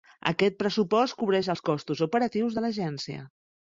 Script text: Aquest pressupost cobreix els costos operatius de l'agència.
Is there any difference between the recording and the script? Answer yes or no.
no